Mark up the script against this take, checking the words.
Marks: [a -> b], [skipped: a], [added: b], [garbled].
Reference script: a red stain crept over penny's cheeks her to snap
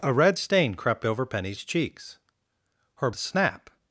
a red stain crept over penny's cheeks her to snap